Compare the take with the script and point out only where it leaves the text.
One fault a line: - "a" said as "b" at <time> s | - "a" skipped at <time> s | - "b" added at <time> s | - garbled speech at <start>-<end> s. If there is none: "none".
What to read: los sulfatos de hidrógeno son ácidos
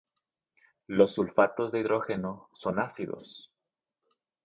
none